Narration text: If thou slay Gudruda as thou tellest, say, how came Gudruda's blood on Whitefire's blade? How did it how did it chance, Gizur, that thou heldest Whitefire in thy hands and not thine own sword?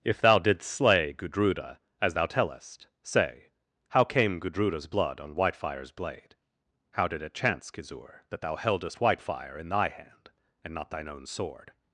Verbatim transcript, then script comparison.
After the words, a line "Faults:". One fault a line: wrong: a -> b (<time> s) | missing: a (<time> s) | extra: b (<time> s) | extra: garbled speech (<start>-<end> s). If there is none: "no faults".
If thou didst slay Gudruda as thou tellest, say, how came Gudruda's blood on Whitefire's blade? How did it chance, Gizur, that thou heldest Whitefire in thy hand and not thine own sword?
Faults:
extra: didst (0.4 s)
missing: how did it (7.3 s)
wrong: hands -> hand (9.9 s)